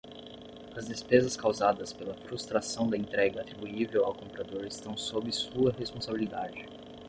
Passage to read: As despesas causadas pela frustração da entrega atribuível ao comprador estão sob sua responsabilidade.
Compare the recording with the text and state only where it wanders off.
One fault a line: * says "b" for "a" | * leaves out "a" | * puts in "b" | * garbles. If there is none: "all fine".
all fine